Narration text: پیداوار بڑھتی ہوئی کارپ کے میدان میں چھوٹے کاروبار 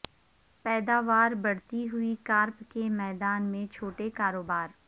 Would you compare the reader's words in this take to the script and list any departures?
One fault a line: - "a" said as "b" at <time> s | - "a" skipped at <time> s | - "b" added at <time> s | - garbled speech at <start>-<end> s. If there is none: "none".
none